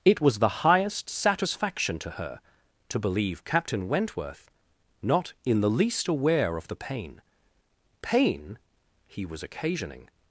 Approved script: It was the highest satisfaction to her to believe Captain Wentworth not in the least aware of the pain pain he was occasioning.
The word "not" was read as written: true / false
true